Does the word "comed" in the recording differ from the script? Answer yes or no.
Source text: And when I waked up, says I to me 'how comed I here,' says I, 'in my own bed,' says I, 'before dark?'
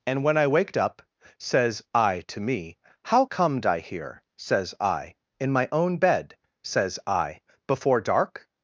no